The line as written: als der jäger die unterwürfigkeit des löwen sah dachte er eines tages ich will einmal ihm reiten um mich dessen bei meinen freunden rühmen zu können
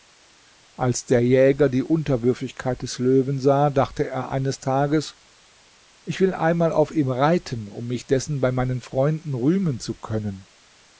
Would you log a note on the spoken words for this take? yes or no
yes